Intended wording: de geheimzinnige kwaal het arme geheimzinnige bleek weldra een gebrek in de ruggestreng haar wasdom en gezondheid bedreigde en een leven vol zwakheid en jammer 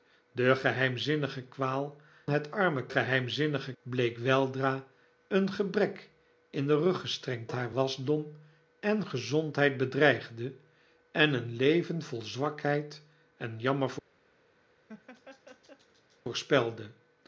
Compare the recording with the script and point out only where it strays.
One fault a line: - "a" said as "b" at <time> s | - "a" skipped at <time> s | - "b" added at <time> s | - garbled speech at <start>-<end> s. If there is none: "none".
none